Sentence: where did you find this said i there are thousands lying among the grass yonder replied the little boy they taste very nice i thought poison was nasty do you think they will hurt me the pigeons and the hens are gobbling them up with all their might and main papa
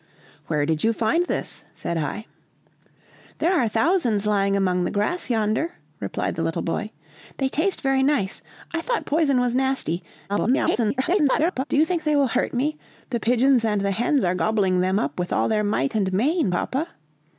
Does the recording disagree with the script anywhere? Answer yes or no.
yes